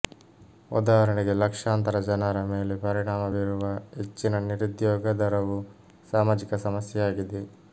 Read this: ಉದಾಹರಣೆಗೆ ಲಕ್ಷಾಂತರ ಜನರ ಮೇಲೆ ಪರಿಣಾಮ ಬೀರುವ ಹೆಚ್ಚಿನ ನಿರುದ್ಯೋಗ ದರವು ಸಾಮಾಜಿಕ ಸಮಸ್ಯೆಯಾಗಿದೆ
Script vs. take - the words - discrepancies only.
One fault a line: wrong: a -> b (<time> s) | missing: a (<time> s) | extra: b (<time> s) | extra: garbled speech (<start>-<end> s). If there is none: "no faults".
no faults